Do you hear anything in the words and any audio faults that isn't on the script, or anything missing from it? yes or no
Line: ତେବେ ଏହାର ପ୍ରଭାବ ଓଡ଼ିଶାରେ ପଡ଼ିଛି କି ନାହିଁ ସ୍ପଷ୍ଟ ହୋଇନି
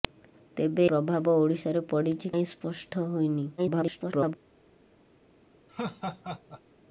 yes